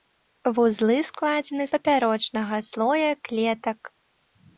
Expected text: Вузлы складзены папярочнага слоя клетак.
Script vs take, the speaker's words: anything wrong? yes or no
no